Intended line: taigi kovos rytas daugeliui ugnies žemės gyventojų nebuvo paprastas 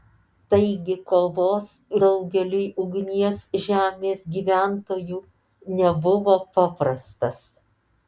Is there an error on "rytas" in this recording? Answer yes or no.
yes